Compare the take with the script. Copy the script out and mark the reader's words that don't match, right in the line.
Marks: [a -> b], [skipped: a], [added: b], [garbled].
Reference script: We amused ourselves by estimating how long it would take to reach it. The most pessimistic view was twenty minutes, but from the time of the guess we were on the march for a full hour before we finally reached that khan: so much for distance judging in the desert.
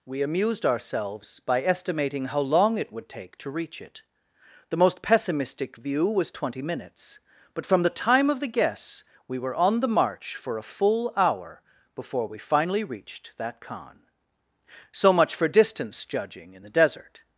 We amused ourselves by estimating how long it would take to reach it. The most pessimistic view was twenty minutes, but from the time of the guess we were on the march for a full hour before we finally reached that khan: so much for distance judging in the desert.